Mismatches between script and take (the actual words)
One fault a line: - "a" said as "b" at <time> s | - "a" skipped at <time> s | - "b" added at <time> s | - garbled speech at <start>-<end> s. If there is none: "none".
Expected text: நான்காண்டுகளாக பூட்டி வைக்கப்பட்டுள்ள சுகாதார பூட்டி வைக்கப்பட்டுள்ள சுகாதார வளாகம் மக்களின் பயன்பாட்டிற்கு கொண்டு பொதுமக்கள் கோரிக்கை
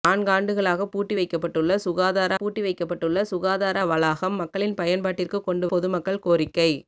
none